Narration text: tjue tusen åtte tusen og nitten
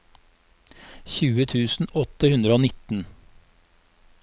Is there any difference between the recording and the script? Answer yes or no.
yes